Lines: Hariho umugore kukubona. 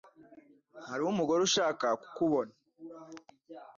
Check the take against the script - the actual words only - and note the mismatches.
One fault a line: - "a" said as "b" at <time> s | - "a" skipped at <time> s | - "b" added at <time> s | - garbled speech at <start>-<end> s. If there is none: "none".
- "ushaka" added at 1.5 s